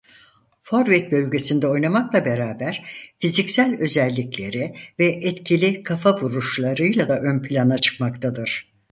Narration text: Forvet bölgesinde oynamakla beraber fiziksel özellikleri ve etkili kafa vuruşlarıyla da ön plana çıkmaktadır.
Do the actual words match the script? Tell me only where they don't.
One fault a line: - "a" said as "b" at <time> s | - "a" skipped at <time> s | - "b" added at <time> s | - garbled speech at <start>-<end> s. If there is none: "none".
none